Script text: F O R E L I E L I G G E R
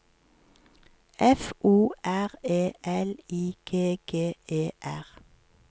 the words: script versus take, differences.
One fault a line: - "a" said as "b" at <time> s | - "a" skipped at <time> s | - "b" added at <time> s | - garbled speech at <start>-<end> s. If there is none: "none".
- "E L I" skipped at 3.6 s